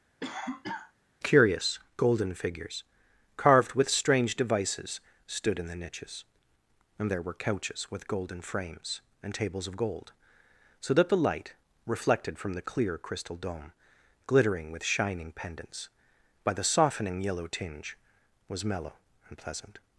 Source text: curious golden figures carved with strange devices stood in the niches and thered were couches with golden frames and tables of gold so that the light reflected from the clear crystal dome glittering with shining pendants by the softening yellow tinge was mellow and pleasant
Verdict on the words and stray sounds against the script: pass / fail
fail